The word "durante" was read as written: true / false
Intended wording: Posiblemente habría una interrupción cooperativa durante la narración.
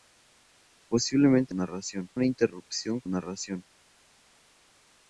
false